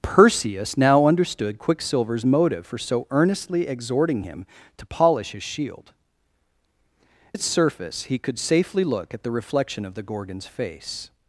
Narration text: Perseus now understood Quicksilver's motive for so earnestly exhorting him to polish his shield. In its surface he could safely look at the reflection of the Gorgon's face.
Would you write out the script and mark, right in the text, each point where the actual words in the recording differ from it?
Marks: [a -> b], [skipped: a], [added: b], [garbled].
Perseus now understood Quicksilver's motive for so earnestly exhorting him to polish his shield. [skipped: In] its surface he could safely look at the reflection of the Gorgon's face.